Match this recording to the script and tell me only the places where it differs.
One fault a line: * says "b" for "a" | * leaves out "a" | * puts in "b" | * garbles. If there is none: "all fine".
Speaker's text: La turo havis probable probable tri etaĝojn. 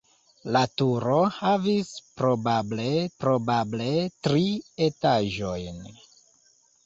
all fine